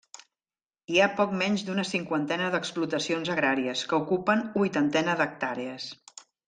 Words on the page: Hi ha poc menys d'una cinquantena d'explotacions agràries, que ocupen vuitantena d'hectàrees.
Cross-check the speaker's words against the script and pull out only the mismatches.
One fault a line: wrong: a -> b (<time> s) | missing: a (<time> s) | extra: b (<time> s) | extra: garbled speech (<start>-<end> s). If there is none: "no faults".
no faults